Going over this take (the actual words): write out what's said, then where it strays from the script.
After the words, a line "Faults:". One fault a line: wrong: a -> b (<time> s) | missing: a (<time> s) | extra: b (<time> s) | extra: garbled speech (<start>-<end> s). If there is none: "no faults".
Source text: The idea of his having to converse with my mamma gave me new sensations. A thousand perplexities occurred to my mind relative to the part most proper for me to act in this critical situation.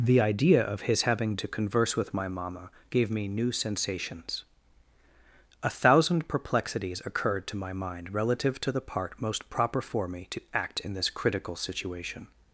The idea of his having to converse with my mamma gave me new sensations. A thousand perplexities occurred to my mind relative to the part most proper for me to act in this critical situation.
Faults:
no faults